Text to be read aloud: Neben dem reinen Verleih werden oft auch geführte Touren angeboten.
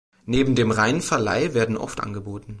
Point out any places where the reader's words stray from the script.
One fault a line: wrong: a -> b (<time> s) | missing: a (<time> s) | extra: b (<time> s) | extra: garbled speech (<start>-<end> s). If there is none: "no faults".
missing: auch geführte Touren (2.0 s)